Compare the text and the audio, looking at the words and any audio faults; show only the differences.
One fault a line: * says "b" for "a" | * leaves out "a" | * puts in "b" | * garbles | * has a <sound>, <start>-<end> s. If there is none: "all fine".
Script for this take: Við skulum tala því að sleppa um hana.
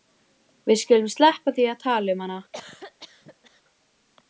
* says "sleppa" for "tala"
* says "tala" for "sleppa"
* has a cough, 2.5-3.6 s